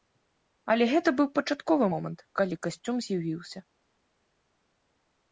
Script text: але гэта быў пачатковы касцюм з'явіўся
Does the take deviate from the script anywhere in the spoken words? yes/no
yes